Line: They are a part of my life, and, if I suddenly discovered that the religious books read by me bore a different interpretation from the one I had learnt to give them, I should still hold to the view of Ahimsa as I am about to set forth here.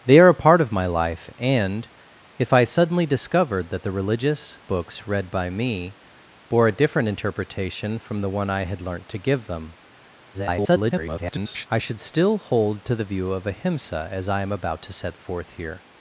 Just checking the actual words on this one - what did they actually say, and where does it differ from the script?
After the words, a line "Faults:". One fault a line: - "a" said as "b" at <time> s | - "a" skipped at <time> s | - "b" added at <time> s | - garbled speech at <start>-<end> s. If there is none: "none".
They are a part of my life, and, if I suddenly discovered that the religious books read by me bore a different interpretation from the one I had learnt to give them, [garbled] I should still hold to the view of Ahimsa as I am about to set forth here.
Faults:
- garbled speech at 10.3-11.7 s